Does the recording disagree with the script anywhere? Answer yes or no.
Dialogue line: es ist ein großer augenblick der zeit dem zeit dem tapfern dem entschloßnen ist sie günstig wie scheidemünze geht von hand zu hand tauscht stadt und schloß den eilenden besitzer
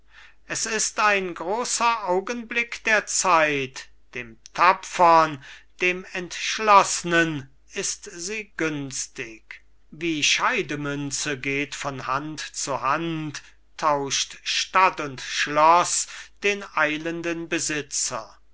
yes